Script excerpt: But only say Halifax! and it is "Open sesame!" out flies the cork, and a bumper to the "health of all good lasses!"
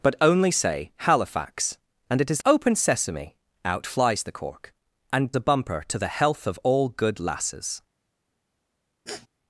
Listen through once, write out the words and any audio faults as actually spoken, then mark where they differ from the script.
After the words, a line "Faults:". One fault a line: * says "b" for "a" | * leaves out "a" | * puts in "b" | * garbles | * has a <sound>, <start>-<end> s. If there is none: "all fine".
But only say Halifax! and it is "Open sesame!" out flies the cork, and a bumper to the "health of all good lasses!"
Faults:
* has a sniff, 9.1-9.3 s